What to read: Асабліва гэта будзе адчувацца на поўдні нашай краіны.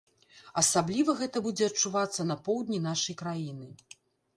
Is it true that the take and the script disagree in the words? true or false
false